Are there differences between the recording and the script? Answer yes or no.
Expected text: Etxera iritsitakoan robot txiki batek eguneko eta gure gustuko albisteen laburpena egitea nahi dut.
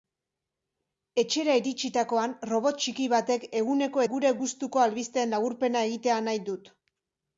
yes